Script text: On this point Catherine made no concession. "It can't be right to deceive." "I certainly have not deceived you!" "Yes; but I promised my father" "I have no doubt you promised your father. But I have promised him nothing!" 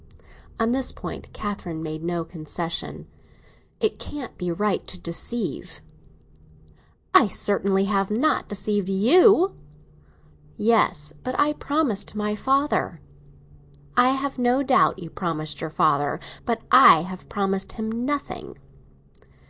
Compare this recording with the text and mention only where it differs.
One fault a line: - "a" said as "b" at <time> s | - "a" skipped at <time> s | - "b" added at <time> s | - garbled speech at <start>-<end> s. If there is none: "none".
none